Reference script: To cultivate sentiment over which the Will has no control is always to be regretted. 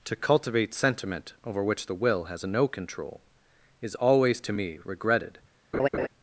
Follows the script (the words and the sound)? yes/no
no